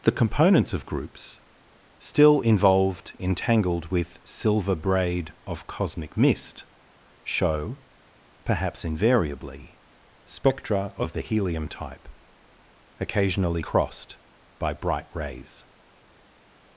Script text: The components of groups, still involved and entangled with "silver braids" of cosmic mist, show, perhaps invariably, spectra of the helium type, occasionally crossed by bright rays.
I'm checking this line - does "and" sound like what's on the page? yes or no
no